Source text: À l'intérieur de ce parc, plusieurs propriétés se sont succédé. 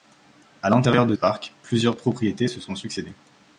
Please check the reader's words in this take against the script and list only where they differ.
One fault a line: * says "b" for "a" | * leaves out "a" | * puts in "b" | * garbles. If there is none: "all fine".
* leaves out "ce"